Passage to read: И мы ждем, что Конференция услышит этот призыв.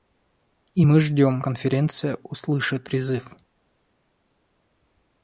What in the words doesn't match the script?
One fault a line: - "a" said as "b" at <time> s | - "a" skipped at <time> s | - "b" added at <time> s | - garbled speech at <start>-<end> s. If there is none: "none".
- "что" skipped at 1.4 s
- "этот" skipped at 2.9 s